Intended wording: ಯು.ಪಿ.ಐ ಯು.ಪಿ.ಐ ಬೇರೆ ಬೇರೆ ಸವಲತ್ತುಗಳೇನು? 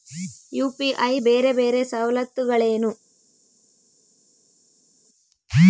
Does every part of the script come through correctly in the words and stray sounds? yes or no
no